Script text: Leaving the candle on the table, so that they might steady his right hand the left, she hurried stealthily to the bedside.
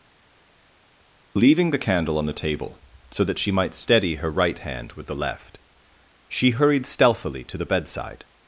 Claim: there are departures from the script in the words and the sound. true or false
true